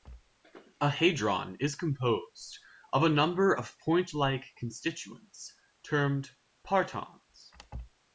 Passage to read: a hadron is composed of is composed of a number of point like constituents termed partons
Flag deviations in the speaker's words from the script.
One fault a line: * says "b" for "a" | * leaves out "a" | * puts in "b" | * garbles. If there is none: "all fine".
* leaves out "is composed of"